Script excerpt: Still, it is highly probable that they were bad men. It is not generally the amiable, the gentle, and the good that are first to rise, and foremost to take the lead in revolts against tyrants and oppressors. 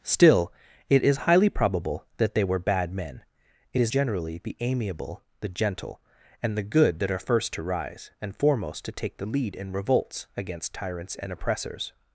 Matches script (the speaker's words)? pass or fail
fail